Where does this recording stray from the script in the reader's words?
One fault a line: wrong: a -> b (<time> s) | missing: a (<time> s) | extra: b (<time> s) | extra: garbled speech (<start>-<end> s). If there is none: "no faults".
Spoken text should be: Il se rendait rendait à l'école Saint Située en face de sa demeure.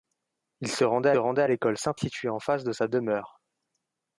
no faults